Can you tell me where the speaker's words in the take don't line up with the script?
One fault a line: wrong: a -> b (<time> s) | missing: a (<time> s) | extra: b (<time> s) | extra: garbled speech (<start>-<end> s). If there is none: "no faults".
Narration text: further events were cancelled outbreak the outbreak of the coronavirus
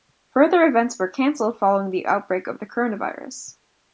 wrong: outbreak -> following (1.6 s)